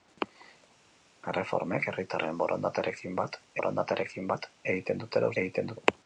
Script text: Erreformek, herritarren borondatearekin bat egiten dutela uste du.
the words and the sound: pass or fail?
fail